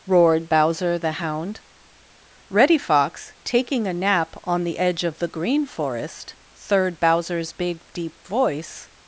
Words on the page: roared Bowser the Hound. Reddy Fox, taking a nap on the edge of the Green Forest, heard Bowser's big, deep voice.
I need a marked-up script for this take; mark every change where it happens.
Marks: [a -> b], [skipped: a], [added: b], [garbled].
roared Bowser the Hound. Reddy Fox, taking a nap on the edge of the Green Forest, [heard -> third] Bowser's big, deep voice.